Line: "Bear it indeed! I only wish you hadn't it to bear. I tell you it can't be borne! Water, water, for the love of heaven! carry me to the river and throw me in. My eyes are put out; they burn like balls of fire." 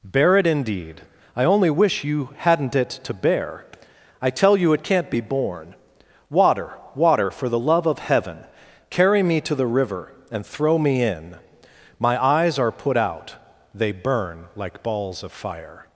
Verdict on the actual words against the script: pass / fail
pass